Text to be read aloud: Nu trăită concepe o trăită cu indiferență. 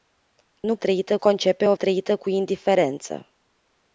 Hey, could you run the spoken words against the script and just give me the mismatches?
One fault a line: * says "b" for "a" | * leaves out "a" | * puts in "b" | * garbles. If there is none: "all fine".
all fine